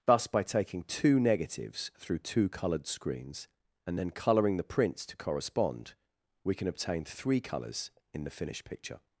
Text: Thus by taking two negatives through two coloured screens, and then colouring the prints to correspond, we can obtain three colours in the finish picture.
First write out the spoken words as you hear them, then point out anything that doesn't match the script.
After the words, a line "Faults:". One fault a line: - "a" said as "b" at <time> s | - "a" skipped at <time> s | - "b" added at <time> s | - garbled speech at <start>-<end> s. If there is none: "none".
Thus by taking two negatives through two coloured screens, and then colouring the prints to correspond, we can obtain three colours in the finished picture.
Faults:
- "finish" said as "finished" at 8.3 s